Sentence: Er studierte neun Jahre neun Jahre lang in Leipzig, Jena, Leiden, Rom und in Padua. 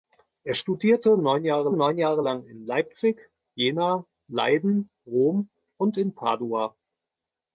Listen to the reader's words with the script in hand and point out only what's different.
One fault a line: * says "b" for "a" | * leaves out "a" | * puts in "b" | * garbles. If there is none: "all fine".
all fine